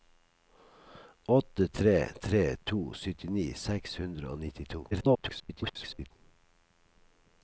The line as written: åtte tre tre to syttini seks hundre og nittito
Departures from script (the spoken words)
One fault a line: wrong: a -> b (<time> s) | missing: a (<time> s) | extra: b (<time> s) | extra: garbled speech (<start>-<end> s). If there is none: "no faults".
extra: garbled speech (4.9-6.1 s)